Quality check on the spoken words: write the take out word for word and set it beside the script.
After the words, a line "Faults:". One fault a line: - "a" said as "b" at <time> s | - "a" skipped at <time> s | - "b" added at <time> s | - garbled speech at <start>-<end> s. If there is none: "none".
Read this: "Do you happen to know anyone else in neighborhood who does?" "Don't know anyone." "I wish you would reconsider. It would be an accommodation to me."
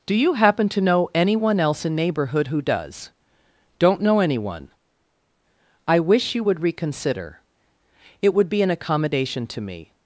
"Do you happen to know anyone else in neighborhood who does?" "Don't know anyone." "I wish you would reconsider. It would be an accommodation to me."
Faults:
none